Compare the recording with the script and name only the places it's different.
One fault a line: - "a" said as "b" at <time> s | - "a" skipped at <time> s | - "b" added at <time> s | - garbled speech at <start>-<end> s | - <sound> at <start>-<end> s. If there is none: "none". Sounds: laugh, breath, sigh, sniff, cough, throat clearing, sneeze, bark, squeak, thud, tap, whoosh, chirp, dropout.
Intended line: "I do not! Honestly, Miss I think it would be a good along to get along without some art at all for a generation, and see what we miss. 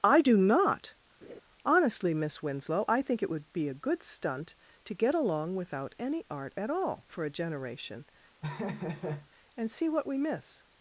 - laugh at 1.2-1.4 s
- "Winslow" added at 2.4 s
- "along" said as "stunt" at 4.0 s
- "some" said as "any" at 6.0 s
- laugh at 8.4-9.3 s